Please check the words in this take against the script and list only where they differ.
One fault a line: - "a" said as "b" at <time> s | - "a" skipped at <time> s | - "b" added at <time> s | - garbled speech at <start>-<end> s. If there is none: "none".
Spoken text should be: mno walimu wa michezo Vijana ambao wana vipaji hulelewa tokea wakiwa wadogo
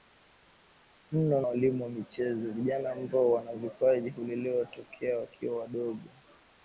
none